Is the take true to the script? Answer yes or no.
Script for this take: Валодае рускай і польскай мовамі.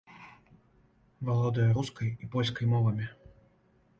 yes